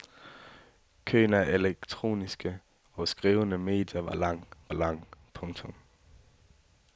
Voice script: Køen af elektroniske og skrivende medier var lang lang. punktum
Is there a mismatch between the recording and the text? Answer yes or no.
no